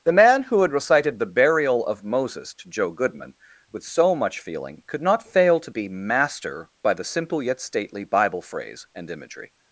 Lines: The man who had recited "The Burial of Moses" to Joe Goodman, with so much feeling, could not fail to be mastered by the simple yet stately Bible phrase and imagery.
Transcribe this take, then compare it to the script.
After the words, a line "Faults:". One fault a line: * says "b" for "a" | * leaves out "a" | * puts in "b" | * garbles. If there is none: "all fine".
The man who had recited "The Burial of Moses" to Joe Goodman, with so much feeling, could not fail to be master by the simple yet stately Bible phrase and imagery.
Faults:
* says "master" for "mastered"